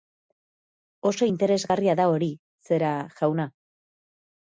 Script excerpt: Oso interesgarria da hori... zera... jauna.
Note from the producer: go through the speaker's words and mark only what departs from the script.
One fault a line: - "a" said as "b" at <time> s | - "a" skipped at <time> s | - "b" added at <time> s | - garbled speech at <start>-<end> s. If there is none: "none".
none